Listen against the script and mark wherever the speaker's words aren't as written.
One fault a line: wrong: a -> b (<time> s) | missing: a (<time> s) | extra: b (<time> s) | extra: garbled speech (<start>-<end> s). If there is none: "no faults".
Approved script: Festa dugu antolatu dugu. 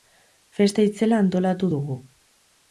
wrong: dugu -> itzela (0.9 s)